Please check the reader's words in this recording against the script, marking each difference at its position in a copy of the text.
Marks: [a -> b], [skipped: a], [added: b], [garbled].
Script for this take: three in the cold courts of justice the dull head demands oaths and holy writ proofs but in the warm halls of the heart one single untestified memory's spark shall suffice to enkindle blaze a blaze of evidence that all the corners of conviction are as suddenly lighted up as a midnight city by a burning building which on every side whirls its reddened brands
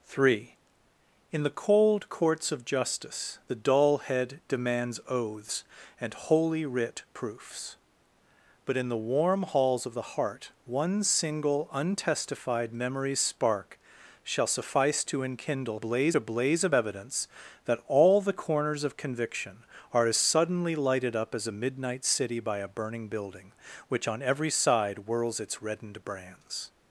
three in the cold courts of justice the dull head demands oaths and holy writ proofs but in the warm halls of the heart one single untestified memory's spark shall suffice to enkindle blaze a blaze of evidence that all the corners of conviction are as suddenly lighted up as a midnight city by a burning building which on every side whirls its reddened brands